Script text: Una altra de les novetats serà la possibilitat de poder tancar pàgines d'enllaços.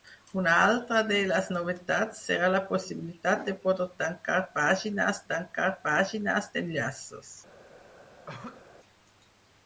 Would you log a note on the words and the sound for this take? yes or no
yes